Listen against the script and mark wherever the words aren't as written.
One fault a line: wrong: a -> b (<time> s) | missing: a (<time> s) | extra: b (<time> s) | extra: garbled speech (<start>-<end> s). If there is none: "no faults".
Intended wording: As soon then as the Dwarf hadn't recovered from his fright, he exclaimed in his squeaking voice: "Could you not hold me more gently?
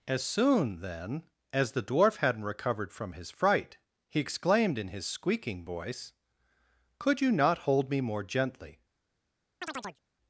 no faults